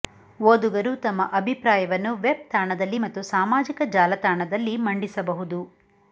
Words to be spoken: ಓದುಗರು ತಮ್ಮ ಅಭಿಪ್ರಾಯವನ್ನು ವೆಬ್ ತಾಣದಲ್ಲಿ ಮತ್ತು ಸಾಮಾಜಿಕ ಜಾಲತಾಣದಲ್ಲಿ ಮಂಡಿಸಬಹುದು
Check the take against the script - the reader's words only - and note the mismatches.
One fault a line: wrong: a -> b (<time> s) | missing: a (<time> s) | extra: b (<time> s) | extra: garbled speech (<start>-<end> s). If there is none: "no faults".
no faults